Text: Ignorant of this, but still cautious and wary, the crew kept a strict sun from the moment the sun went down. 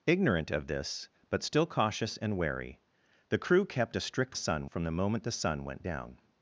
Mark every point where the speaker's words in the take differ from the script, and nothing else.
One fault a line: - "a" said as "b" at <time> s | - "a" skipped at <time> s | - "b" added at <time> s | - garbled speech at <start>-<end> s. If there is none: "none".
none